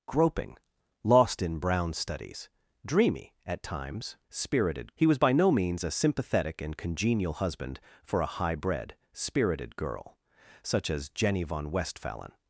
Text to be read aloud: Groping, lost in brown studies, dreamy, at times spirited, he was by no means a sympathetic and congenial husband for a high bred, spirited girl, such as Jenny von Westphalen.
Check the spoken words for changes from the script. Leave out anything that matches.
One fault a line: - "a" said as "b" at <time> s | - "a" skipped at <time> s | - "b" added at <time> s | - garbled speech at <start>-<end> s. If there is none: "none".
none